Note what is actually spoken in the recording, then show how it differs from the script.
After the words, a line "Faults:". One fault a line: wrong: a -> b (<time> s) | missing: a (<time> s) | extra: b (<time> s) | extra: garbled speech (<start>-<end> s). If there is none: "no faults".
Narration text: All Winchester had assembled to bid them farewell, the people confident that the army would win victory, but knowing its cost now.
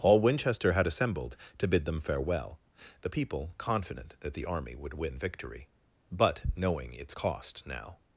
All Winchester had assembled to bid them farewell, the people confident that the army would win victory, but knowing its cost now.
Faults:
no faults